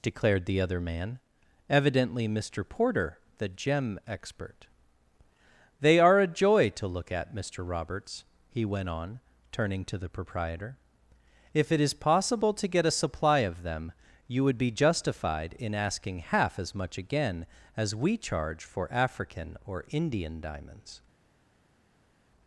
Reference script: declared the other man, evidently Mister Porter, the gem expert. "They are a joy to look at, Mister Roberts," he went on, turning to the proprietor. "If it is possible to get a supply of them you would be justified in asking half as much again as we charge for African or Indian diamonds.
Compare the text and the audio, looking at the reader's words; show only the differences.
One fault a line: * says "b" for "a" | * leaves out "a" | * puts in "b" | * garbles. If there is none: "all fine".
all fine